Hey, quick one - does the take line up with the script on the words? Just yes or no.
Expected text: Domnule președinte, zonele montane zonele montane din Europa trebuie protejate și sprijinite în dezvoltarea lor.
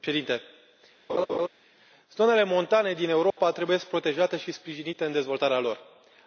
no